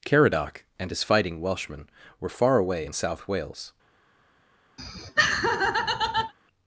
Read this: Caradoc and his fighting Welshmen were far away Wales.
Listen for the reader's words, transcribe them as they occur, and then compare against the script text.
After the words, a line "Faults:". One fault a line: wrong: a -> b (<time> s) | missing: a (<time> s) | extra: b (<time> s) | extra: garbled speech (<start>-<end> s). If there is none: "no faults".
Caradoc and his fighting Welshmen were far away in South Wales.
Faults:
extra: in South (2.8 s)